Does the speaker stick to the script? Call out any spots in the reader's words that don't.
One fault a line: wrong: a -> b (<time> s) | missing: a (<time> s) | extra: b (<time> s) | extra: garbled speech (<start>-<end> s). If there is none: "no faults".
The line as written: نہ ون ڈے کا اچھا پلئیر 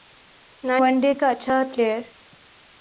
no faults